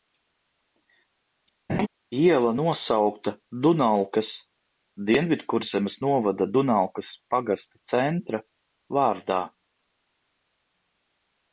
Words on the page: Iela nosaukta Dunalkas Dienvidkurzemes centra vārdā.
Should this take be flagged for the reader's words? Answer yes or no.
yes